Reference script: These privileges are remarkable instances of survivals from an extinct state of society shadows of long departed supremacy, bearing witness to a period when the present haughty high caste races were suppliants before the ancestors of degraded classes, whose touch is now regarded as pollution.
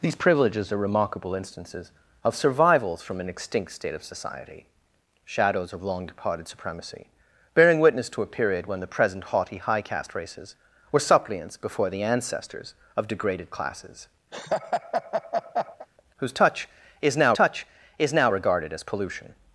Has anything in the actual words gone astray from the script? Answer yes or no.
yes